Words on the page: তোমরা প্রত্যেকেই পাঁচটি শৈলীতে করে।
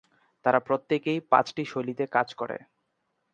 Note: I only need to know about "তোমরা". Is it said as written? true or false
false